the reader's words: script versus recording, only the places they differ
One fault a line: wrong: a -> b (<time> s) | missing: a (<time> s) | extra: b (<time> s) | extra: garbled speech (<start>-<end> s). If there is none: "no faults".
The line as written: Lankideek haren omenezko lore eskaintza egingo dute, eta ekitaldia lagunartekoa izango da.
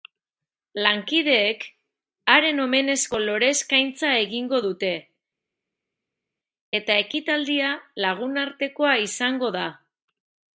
no faults